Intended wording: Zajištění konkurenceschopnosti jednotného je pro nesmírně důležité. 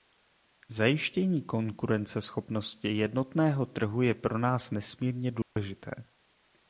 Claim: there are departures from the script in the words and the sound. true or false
true